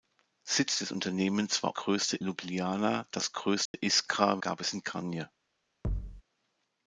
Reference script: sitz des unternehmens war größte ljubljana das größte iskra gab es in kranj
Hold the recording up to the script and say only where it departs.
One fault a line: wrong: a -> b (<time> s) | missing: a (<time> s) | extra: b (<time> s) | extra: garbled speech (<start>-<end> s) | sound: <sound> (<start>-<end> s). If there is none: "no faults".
sound: dropout (3.7-3.7 s)
sound: thud (5.8-6.2 s)